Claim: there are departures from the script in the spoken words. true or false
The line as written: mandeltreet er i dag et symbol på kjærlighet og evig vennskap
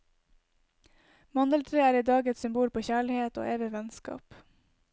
false